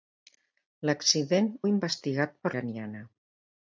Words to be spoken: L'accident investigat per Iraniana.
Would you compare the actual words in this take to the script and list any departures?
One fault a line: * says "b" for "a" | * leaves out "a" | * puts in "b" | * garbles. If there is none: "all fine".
all fine